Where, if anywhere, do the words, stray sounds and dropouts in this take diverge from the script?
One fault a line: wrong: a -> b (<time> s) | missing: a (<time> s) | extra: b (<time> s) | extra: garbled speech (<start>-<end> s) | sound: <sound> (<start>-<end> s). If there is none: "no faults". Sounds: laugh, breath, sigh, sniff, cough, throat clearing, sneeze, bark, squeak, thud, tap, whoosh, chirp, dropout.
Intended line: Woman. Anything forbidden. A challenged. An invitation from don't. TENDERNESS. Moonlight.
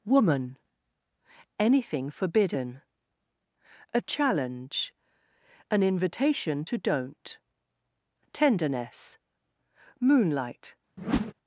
wrong: challenged -> challenge (4.0 s)
wrong: from -> to (6.6 s)
sound: whoosh (11.0-11.3 s)